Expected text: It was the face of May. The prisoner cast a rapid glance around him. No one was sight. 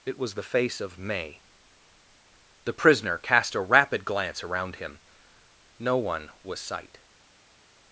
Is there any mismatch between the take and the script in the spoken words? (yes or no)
no